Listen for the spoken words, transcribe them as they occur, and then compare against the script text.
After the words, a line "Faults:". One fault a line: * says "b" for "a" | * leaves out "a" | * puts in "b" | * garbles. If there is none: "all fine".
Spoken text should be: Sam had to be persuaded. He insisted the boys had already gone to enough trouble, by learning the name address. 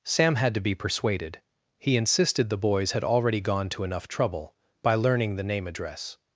Sam had to be persuaded. He insisted the boys had already gone to enough trouble, by learning the name address.
Faults:
all fine